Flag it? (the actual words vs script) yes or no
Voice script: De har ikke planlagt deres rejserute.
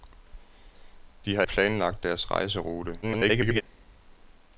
yes